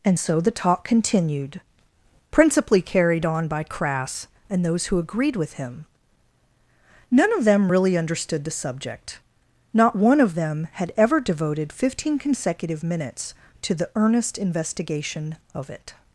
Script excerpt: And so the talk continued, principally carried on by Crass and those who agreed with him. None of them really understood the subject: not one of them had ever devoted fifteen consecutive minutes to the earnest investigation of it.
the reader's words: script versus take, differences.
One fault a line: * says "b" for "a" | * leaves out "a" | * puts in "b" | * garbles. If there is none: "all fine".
all fine